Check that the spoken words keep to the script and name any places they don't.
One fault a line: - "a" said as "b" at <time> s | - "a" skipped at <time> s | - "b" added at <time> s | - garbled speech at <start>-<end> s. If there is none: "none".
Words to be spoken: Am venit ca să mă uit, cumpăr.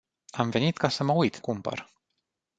none